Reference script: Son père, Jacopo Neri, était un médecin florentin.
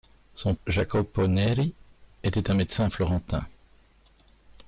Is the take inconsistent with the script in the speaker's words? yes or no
yes